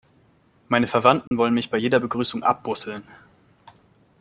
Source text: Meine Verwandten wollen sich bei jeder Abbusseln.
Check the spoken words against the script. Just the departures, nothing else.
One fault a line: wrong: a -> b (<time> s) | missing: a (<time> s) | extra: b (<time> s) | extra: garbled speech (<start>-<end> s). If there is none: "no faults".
wrong: sich -> mich (1.5 s)
extra: Begrüßung (1.9 s)